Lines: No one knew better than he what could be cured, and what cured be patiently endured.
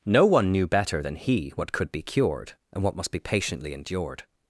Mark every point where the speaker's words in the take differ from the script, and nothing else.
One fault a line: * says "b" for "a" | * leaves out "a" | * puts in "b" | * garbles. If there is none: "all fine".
* says "must" for "cured"